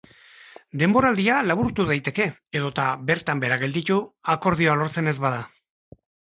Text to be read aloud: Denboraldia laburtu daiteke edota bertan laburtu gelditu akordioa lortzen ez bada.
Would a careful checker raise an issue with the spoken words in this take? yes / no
yes